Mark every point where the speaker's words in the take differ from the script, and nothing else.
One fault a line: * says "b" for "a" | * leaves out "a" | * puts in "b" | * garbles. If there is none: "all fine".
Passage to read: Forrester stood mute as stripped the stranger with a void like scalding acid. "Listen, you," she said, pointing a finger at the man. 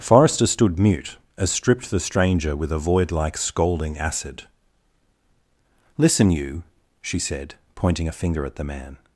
all fine